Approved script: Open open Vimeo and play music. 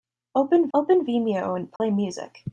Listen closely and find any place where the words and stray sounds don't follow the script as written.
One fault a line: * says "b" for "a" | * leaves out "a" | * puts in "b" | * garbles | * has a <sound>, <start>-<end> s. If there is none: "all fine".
* has a dropout, 1.8-1.8 s